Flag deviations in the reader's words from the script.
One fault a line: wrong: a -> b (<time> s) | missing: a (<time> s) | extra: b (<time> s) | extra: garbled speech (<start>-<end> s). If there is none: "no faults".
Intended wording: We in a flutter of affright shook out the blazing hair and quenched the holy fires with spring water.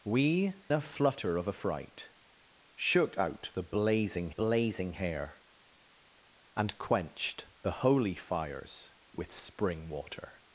missing: in (0.5 s)
extra: blazing (4.3 s)